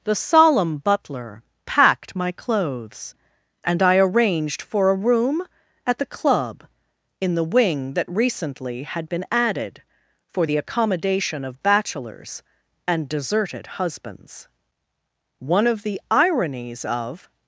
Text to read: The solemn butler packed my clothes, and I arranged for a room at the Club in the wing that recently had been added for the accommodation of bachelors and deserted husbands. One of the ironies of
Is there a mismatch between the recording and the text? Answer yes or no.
no